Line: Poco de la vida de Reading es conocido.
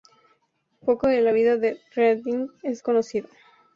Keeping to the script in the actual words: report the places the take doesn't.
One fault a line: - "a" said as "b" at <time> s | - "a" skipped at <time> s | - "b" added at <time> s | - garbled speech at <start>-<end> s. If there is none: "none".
none